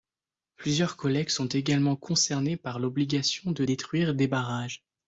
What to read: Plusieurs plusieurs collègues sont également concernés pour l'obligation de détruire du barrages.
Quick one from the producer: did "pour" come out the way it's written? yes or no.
no